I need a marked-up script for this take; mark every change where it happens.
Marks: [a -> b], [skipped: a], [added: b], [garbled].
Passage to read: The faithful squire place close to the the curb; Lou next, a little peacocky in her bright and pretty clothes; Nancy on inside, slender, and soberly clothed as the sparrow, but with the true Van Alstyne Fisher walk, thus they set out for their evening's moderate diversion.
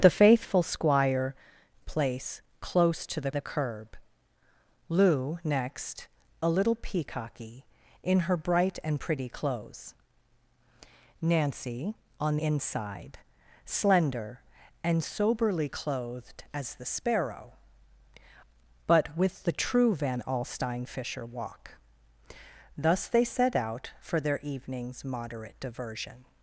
The faithful squire place close to the the curb; Lou next, a little peacocky in her bright and pretty clothes; Nancy on inside, slender, and soberly clothed as the sparrow, but with the true Van Alstyne Fisher walk, thus they set out for their evening's moderate diversion.